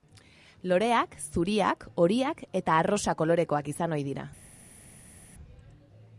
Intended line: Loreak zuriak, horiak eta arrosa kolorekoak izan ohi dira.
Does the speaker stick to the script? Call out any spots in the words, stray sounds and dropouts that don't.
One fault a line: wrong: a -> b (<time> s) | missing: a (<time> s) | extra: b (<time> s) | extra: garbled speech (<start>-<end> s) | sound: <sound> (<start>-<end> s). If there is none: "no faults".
no faults